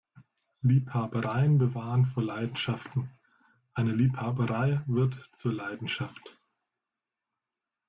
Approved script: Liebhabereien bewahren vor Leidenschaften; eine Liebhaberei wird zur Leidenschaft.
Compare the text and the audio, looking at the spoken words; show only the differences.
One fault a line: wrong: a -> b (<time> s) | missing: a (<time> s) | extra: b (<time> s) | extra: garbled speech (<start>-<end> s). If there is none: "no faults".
no faults